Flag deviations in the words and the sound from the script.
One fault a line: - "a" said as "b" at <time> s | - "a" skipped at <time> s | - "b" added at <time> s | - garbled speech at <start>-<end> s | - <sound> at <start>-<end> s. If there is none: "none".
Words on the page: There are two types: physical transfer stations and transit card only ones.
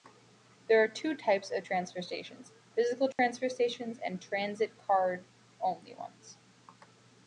- "of transfer stations" added at 1.5 s
- dropout at 3.1-3.2 s